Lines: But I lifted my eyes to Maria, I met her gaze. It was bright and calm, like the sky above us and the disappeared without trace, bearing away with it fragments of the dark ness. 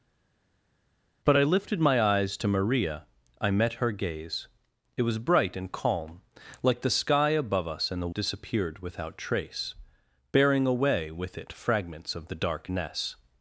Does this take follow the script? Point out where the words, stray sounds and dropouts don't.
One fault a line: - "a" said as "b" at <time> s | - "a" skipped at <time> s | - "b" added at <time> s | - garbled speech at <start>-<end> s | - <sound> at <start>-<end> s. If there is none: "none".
none